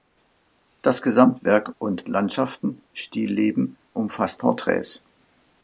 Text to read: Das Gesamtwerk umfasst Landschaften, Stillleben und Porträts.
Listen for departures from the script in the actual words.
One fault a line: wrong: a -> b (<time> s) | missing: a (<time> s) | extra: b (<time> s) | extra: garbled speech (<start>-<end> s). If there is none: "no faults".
wrong: umfasst -> und (1.8 s)
wrong: und -> umfasst (4.0 s)